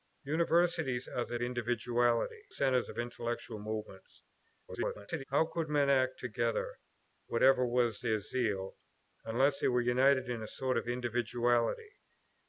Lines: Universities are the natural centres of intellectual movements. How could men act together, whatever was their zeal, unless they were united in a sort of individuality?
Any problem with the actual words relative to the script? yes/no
yes